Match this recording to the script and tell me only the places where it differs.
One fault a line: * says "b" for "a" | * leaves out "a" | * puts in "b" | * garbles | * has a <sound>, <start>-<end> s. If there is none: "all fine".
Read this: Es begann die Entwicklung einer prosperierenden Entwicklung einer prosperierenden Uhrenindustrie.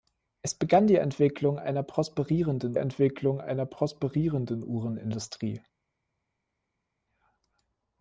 all fine